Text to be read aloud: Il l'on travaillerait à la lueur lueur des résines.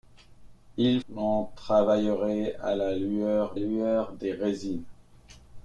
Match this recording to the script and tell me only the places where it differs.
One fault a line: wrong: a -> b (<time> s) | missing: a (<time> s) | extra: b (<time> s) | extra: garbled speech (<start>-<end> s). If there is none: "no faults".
no faults